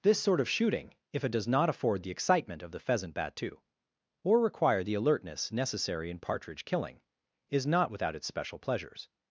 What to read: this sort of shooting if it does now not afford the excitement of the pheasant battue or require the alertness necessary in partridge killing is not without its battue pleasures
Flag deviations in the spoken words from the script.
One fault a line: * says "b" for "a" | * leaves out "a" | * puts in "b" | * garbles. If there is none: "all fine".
* leaves out "now"
* says "special" for "battue"